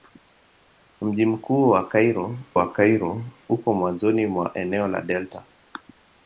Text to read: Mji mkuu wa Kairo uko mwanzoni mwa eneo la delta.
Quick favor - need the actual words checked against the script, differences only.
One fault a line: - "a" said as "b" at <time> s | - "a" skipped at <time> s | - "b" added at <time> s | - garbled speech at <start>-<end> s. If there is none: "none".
- "wa Kairo" added at 2.5 s